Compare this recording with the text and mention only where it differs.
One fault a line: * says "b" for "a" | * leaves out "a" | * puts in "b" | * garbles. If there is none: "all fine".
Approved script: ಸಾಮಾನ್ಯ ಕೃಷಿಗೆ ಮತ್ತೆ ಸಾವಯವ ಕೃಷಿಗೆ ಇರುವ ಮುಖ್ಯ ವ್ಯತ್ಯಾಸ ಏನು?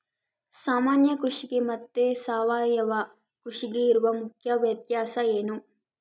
all fine